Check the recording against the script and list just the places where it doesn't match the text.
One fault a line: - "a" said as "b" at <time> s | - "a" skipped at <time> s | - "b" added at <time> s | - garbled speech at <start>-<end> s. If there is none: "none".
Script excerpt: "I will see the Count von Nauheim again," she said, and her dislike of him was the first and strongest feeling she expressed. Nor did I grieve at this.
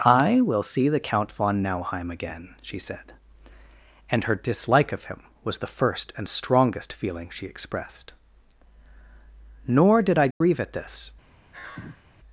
none